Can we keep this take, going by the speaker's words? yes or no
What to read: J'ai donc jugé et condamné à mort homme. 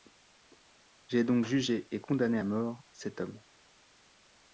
no